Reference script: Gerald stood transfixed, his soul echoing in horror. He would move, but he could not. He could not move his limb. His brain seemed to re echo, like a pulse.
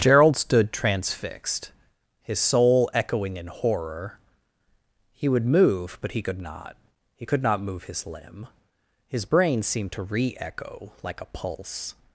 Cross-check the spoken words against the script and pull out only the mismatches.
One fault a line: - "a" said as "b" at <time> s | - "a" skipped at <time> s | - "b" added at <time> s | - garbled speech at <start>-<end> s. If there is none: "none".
none